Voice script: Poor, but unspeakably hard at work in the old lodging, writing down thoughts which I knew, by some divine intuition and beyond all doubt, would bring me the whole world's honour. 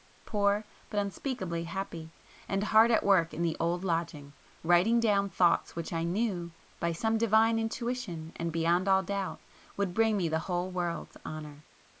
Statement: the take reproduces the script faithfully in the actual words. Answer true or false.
false